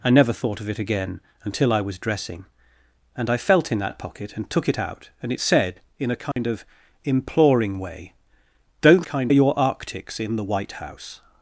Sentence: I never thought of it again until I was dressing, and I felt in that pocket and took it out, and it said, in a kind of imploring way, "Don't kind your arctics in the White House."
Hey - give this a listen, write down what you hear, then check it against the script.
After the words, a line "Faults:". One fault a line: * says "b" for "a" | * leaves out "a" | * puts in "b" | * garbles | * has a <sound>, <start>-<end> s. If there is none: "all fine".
I never thought of it again until I was dressing, and I felt in that pocket and took it out, and it said, in a kind of imploring way, "Don't kind your arctics in the White House."
Faults:
* has a dropout, 6.3-6.4 s